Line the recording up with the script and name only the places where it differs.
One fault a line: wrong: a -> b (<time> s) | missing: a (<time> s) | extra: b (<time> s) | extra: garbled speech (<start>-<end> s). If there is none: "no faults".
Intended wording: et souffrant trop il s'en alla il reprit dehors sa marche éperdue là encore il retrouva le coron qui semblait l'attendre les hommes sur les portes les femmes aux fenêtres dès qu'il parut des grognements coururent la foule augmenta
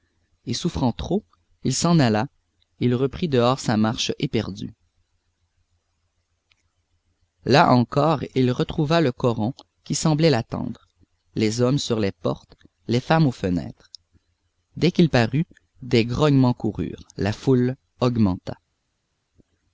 no faults